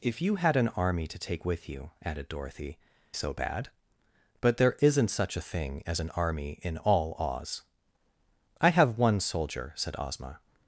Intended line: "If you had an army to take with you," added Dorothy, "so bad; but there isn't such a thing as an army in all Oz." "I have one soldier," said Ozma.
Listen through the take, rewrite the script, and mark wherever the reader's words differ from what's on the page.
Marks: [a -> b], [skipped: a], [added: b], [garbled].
"If you had an army to take with you," added Dorothy, "so bad; but there isn't such a thing as an army in all Oz." "I have one soldier," said Ozma.